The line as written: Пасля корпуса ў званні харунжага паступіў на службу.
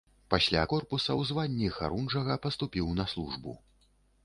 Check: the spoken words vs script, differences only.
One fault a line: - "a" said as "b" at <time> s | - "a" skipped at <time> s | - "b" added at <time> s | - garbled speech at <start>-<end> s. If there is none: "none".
none